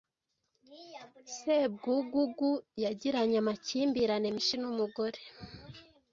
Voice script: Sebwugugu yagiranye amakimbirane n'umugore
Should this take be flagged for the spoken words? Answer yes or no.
yes